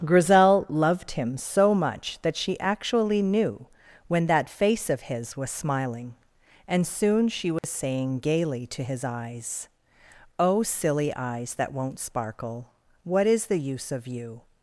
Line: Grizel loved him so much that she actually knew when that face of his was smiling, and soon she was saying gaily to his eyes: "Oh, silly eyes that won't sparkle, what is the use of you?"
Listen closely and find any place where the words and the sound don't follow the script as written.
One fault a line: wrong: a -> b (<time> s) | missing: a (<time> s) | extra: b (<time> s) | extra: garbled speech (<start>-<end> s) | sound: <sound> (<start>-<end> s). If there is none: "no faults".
sound: dropout (7.6-7.6 s)